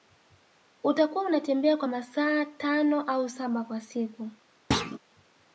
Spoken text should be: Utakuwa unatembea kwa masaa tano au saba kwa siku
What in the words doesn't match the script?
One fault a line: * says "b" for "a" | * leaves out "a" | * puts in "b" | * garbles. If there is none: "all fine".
all fine